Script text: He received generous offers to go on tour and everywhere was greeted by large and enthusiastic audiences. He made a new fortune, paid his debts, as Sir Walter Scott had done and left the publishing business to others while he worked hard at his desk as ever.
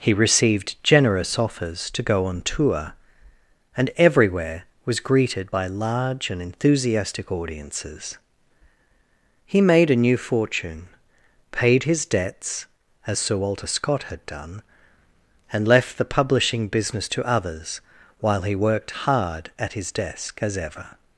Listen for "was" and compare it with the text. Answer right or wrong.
right